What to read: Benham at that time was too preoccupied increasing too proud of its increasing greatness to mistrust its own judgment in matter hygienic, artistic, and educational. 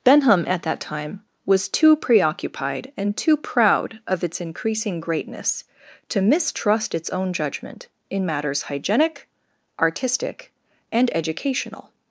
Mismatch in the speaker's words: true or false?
true